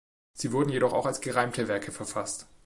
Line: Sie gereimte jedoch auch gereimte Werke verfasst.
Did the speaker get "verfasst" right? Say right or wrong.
right